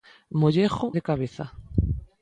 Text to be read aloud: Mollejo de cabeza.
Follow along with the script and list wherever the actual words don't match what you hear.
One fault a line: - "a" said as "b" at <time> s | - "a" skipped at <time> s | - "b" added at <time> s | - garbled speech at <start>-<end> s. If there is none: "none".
none